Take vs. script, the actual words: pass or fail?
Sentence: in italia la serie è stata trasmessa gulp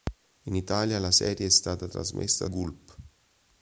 pass